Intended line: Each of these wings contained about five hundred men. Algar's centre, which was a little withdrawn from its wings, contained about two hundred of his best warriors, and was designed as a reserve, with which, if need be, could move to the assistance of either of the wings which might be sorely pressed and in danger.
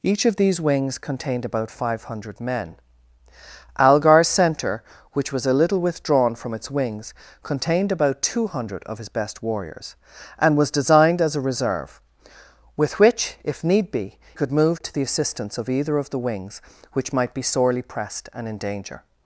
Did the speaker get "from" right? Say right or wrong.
right